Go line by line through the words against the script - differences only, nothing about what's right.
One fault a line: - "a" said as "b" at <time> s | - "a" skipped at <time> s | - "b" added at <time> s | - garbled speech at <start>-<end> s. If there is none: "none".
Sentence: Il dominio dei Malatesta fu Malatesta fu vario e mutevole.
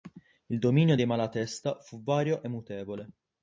- "Malatesta fu" skipped at 2.0 s